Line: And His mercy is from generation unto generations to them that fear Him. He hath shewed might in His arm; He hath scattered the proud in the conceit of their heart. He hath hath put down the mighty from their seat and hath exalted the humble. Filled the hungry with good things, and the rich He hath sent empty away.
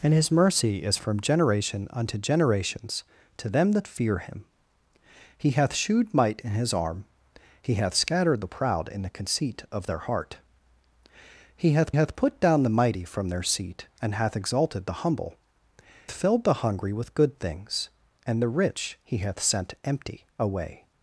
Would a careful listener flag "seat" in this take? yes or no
no